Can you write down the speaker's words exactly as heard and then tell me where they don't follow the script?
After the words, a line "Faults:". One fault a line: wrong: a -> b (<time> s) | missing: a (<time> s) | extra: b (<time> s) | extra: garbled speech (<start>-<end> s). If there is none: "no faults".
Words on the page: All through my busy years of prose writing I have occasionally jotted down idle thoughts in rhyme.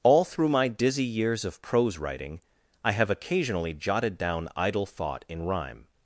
All through my dizzy years of prose writing I have occasionally jotted down idle thought in rhyme.
Faults:
wrong: busy -> dizzy (0.7 s)
wrong: thoughts -> thought (4.9 s)